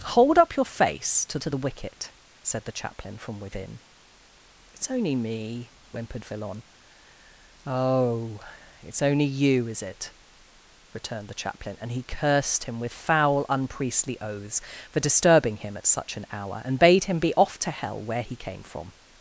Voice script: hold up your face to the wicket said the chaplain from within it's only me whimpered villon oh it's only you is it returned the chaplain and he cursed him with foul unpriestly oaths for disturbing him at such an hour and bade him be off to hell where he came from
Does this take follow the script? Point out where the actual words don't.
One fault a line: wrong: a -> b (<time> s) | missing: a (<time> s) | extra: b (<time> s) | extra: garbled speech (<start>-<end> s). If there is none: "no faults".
extra: to (1.4 s)